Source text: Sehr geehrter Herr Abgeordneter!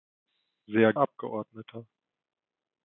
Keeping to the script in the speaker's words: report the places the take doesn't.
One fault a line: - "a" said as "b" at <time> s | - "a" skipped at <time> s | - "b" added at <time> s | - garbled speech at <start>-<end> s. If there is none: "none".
- "geehrter Herr" skipped at 0.9 s